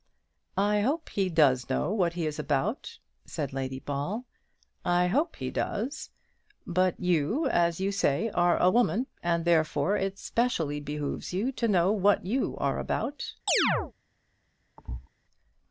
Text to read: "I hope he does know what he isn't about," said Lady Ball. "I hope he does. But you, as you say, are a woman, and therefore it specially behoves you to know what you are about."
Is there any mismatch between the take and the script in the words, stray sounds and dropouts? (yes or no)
yes